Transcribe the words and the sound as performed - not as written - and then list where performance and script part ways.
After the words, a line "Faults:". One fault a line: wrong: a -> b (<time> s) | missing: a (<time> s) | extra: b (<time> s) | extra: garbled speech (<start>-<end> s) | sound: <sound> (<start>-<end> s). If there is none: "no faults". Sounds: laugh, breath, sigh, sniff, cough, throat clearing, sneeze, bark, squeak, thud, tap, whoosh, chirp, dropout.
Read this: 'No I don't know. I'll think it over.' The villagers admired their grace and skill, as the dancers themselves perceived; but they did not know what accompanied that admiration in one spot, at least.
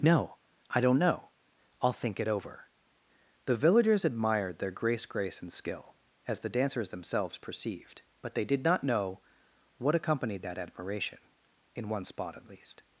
'No I don't know. I'll think it over.' The villagers admired their grace grace and skill, as the dancers themselves perceived; but they did not know what accompanied that admiration in one spot, at least.
Faults:
extra: grace (5.0 s)